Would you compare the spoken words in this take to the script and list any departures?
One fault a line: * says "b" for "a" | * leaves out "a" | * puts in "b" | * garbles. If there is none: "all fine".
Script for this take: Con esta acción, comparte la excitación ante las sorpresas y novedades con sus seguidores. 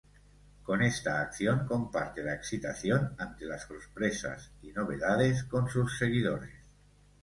all fine